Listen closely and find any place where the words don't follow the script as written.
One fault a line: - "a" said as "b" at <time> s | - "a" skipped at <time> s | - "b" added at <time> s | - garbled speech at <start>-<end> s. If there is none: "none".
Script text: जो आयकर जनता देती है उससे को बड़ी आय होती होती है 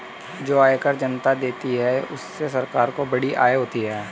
- "सरकार" added at 2.5 s
- "होती" skipped at 3.8 s